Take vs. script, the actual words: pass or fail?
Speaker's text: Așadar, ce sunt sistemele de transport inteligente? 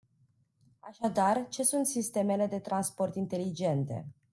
pass